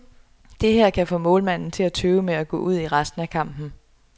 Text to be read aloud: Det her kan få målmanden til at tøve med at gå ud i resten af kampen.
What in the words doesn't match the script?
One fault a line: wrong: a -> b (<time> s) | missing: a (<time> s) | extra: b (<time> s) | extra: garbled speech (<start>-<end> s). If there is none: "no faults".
no faults